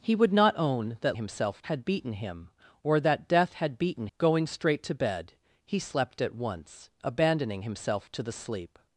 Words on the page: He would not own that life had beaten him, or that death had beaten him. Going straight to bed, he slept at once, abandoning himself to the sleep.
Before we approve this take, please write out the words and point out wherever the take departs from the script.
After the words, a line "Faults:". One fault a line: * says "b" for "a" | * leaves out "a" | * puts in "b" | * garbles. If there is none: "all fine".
He would not own that himself had beaten him, or that death had beaten. Going straight to bed, he slept at once, abandoning himself to the sleep.
Faults:
* says "himself" for "life"
* leaves out "him"